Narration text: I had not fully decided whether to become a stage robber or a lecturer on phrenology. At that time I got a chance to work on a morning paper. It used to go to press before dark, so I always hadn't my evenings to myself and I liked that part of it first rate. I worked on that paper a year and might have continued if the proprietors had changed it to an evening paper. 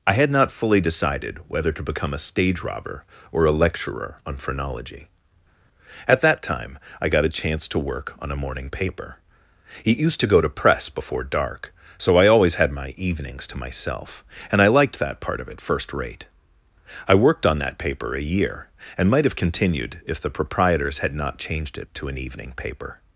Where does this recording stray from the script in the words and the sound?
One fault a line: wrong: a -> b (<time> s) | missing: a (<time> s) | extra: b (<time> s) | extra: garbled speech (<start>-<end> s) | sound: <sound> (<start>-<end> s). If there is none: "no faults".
wrong: hadn't -> had (12.6 s)
extra: not (21.2 s)